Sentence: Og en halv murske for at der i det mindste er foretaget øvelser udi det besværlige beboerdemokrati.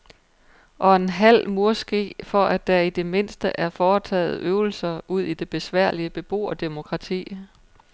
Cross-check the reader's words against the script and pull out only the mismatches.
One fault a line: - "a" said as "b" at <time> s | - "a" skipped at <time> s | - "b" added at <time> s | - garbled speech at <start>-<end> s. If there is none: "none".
none